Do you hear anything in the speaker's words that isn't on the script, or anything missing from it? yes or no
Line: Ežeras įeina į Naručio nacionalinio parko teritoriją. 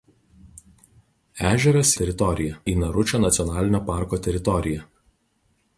yes